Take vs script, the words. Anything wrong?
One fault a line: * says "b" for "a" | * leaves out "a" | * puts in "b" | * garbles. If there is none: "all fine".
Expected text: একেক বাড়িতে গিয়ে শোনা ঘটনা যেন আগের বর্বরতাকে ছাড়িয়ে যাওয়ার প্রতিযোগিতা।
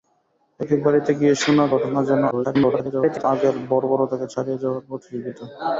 * garbles